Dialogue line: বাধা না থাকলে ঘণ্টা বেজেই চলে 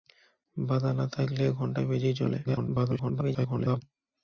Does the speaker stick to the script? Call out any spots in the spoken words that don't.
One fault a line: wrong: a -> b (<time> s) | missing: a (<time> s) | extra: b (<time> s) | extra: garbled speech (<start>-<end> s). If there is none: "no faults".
extra: garbled speech (2.4-3.8 s)